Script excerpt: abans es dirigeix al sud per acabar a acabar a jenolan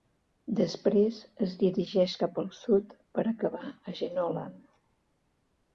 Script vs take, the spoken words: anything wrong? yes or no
yes